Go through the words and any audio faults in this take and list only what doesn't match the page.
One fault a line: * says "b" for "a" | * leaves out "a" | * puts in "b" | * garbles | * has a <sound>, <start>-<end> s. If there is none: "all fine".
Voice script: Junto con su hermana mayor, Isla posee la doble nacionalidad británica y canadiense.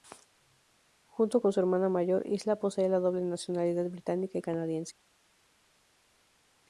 all fine